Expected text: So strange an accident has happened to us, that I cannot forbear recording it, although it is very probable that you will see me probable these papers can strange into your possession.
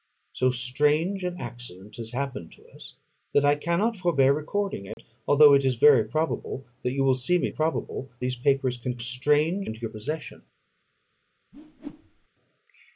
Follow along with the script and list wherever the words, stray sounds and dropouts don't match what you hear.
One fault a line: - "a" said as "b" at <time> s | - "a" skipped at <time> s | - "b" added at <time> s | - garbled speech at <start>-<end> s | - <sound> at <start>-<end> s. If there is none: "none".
- dropout at 4.9-5.0 s
- whoosh at 11.5-12.3 s